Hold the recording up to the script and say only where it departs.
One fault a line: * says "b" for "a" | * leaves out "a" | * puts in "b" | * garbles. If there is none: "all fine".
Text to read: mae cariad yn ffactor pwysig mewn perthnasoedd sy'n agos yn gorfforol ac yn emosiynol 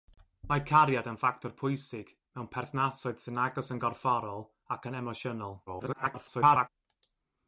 * garbles